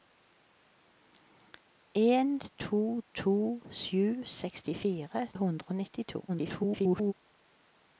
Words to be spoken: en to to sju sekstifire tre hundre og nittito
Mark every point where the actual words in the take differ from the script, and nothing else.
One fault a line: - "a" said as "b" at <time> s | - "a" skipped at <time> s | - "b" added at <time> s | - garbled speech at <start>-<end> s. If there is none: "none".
- "tre" skipped at 5.3 s
- garbled speech at 6.3-7.1 s